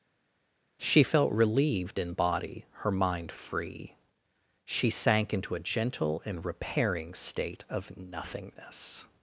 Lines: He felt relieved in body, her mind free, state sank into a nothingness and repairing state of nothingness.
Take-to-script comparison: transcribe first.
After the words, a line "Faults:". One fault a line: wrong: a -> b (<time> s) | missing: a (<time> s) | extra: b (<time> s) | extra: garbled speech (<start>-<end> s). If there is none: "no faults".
She felt relieved in body, her mind free, she sank into a gentle and repairing state of nothingness.
Faults:
wrong: He -> She (0.8 s)
wrong: state -> she (4.6 s)
wrong: nothingness -> gentle (5.6 s)